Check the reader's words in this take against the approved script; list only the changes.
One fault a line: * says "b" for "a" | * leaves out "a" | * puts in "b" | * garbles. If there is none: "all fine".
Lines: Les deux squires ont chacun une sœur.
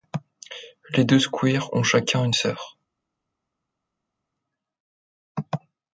all fine